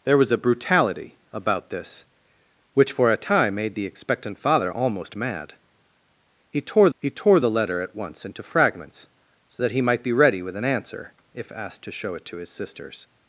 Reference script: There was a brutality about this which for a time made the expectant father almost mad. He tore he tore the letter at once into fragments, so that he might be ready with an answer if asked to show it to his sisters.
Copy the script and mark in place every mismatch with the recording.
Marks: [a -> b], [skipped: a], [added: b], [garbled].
There was a brutality about this which for a time made the expectant father almost mad. He tore he tore the letter at once into fragments, so that he might be ready with an answer if asked to show it to his sisters.